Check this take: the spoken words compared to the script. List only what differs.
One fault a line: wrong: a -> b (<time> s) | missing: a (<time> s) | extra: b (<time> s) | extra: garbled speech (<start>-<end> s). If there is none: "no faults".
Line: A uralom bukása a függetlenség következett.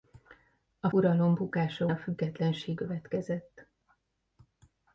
no faults